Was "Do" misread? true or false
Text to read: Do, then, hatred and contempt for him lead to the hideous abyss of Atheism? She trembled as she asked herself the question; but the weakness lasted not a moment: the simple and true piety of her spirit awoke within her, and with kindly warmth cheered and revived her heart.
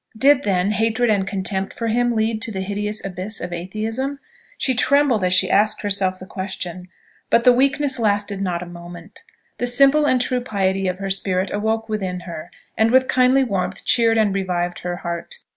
true